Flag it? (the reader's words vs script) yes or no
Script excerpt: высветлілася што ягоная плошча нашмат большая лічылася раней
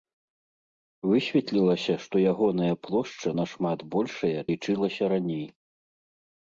no